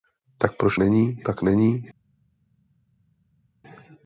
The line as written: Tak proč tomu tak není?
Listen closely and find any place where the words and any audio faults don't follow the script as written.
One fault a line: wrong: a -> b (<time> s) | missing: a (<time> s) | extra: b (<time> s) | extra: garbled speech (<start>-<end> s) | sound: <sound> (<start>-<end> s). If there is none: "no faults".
wrong: tomu -> není (0.8 s)